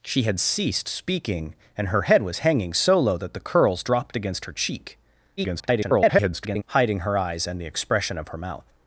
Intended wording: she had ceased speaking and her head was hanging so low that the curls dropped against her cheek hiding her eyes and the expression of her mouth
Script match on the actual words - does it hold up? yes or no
no